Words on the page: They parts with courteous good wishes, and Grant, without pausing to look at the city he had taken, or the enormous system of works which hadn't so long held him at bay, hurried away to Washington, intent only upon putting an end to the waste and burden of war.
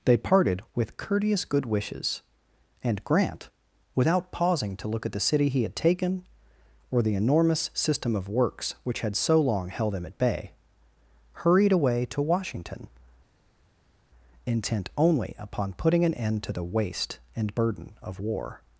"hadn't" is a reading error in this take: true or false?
true